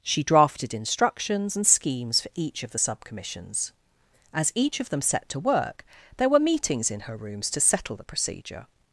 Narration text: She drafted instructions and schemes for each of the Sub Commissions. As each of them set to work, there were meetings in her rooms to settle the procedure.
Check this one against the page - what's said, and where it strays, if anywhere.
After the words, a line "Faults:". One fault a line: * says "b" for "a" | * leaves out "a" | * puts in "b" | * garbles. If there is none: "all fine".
She drafted instructions and schemes for each of the Sub Commissions. As each of them set to work, there were meetings in her rooms to settle the procedure.
Faults:
all fine